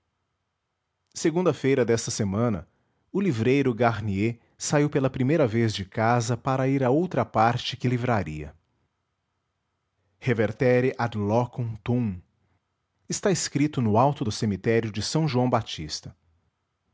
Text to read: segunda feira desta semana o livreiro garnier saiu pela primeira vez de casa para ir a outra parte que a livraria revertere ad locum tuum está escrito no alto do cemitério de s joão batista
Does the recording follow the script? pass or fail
pass